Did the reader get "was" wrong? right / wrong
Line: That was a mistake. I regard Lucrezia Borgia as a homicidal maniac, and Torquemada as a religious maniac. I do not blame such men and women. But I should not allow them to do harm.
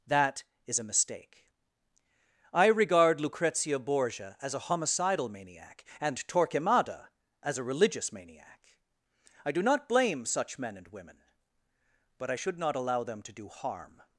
wrong